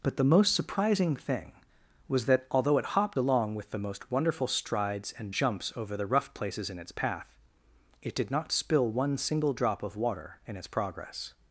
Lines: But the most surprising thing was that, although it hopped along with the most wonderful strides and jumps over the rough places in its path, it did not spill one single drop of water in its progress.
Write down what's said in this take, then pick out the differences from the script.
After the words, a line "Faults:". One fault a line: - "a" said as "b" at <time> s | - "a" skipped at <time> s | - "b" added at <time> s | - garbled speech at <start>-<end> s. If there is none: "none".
But the most surprising thing was that, although it hopped along with the most wonderful strides and jumps over the rough places in its path, it did not spill one single drop of water in its progress.
Faults:
none